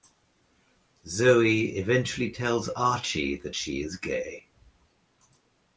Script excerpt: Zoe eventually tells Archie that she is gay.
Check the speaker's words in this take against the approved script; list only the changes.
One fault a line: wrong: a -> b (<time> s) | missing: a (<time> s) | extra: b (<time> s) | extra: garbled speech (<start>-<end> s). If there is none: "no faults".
no faults